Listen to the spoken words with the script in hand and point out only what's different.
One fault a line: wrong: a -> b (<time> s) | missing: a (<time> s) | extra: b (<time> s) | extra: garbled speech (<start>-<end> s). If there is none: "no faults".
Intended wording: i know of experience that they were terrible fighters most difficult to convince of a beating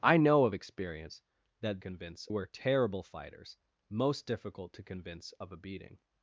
wrong: they -> convince (1.8 s)